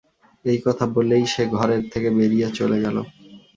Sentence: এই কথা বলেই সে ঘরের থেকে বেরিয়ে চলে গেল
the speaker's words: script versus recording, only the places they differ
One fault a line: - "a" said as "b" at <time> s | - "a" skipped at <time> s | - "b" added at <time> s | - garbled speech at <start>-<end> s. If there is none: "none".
none